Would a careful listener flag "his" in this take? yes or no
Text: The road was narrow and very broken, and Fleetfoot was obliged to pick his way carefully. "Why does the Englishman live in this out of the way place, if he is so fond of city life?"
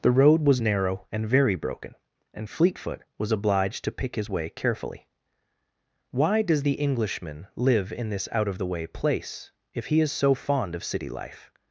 no